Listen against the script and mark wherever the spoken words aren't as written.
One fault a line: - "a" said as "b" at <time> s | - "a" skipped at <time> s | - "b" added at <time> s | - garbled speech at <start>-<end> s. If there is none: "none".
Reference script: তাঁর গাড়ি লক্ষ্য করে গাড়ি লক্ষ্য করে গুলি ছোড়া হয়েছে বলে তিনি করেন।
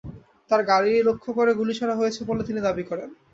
- "গাড়ি লক্ষ্য করে" skipped at 1.5 s
- "দাবি" added at 2.7 s